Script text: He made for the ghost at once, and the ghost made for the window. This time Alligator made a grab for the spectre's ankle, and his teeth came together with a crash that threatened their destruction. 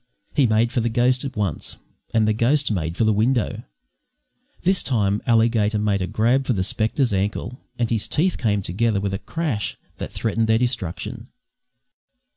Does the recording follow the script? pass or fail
pass